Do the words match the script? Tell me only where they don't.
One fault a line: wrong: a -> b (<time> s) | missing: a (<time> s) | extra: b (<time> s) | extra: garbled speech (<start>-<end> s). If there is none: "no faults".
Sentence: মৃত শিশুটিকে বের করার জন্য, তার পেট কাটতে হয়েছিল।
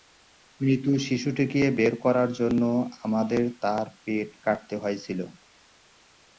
extra: আমাদের (3.0 s)